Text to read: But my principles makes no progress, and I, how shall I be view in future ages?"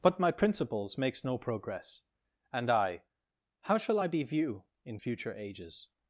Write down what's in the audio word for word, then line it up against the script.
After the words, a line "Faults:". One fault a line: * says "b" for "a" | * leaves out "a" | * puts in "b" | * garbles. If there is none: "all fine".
But my principles makes no progress, and I, how shall I be view in future ages?"
Faults:
all fine